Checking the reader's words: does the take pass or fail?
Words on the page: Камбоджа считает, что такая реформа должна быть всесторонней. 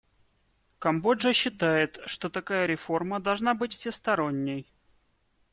pass